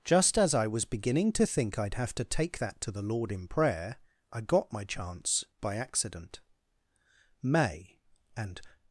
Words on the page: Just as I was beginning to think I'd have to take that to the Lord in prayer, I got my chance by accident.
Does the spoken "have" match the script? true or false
true